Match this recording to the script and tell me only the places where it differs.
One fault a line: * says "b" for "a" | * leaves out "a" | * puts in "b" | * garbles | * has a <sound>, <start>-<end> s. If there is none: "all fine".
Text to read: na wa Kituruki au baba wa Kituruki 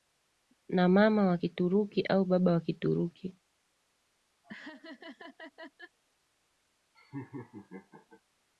* puts in "mama"
* has a laugh, 4.4-6.0 s
* has a laugh, 6.9-8.2 s